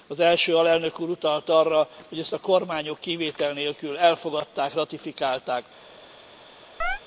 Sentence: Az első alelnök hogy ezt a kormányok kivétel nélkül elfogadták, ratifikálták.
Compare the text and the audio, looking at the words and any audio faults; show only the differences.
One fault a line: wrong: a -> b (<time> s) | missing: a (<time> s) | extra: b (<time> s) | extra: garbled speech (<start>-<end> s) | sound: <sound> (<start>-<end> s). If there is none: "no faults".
extra: úr utalt arra (1.0 s)
sound: chirp (6.8-7.0 s)